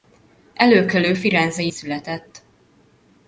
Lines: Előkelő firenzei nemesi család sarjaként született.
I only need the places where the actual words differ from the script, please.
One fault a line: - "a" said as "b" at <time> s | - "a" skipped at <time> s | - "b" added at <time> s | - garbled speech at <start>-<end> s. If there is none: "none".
- "nemesi család sarjaként" skipped at 1.7 s